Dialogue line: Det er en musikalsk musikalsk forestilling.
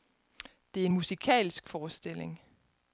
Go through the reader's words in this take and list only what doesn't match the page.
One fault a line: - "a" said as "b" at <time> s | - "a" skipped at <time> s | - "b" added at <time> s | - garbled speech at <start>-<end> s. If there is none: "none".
- "musikalsk" skipped at 1.7 s